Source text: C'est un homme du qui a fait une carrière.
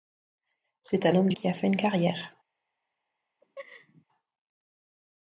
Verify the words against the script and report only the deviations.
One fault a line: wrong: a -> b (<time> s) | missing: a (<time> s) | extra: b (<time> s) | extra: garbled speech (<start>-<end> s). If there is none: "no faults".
no faults